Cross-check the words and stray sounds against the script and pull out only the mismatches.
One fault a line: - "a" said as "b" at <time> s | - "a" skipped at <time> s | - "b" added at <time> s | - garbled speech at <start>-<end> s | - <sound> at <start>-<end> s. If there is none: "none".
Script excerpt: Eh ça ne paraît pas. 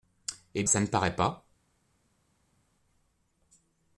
none